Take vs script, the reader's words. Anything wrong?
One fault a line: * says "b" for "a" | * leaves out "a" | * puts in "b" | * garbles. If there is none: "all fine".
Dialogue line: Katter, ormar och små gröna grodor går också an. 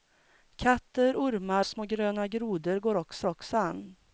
* leaves out "och"
* puts in "också"